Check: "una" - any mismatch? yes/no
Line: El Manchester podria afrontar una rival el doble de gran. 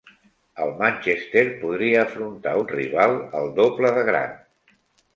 yes